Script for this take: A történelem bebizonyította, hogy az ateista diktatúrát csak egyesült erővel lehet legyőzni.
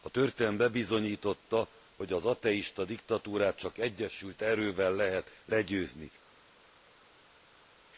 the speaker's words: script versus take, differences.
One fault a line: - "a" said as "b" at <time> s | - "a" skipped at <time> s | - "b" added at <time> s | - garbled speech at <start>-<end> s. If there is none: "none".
none